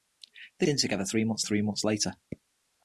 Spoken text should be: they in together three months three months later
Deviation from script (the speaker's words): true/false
false